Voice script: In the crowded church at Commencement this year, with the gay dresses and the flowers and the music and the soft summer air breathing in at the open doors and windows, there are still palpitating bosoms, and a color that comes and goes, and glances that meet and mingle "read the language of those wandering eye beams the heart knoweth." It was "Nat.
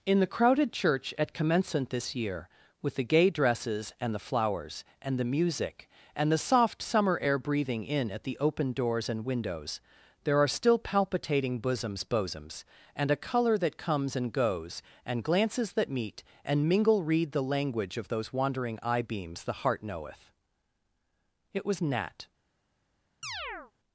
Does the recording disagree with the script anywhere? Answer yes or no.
yes